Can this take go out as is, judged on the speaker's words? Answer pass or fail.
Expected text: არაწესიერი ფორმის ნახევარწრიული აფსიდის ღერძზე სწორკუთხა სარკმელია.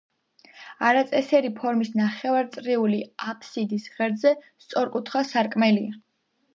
pass